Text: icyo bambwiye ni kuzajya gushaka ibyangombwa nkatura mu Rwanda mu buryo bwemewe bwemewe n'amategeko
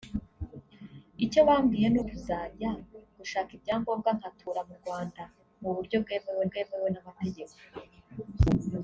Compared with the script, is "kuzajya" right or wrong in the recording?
right